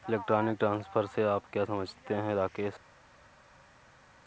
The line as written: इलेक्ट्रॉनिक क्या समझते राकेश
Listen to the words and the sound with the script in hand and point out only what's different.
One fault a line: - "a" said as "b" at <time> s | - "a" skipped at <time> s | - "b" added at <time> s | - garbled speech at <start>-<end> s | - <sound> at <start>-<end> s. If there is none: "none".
- "ट्रांसफर से आप" added at 0.6 s
- "हैं" added at 2.1 s